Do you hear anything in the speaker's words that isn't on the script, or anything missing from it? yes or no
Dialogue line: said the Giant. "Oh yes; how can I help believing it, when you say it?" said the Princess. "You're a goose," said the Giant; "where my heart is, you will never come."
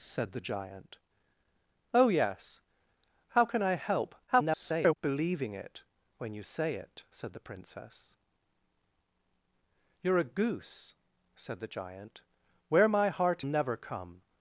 yes